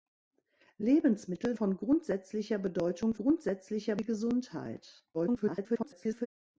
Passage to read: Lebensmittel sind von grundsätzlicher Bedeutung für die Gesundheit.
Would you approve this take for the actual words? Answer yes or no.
no